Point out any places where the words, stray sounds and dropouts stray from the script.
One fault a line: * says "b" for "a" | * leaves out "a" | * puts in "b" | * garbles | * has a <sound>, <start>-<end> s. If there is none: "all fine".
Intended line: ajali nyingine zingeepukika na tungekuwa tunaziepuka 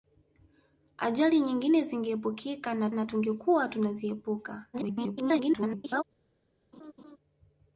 * puts in "na"
* garbles
* has a laugh, 6.7-7.2 s